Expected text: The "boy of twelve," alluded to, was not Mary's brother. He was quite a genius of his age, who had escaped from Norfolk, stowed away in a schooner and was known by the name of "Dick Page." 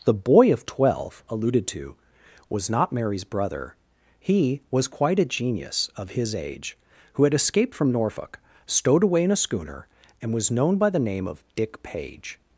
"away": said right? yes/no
yes